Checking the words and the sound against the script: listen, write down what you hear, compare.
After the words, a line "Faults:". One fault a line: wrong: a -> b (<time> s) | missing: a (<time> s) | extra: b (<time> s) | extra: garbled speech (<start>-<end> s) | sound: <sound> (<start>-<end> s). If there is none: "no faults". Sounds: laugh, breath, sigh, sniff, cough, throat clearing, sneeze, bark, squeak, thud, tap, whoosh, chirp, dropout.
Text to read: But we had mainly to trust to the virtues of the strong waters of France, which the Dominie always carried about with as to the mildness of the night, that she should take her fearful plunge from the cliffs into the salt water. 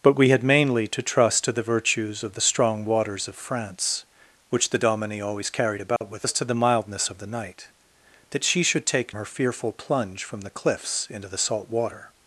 But we had mainly to trust to the virtues of the strong waters of France, which the Dominie always carried about with as to the mildness of the night, that she should take her fearful plunge from the cliffs into the salt water.
Faults:
sound: dropout (6.0-6.0 s)